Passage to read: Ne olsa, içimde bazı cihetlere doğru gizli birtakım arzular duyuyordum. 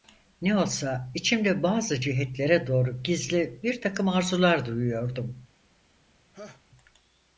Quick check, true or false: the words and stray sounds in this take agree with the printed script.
false